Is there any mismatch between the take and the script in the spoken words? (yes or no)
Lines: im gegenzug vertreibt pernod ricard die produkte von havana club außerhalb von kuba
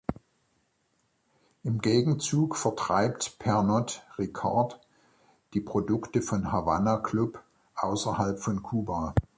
no